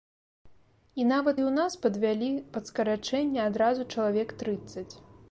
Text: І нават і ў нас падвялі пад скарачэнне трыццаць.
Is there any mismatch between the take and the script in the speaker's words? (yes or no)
yes